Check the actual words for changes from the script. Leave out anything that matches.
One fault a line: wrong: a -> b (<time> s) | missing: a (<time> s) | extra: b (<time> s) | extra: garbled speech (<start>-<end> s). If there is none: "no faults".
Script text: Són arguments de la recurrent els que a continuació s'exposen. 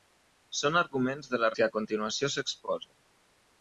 missing: recurrent els (1.5 s)